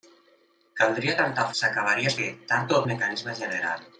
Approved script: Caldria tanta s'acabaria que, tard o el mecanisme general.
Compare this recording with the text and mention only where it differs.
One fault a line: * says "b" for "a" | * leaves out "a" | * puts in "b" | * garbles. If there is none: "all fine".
all fine